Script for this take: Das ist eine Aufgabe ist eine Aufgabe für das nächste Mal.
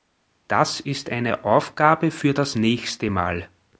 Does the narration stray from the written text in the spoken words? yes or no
yes